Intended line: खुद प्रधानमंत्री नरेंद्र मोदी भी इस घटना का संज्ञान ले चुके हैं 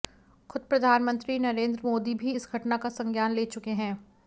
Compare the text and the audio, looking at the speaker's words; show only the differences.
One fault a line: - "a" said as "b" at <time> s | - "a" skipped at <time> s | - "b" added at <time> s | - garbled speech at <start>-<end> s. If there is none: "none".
none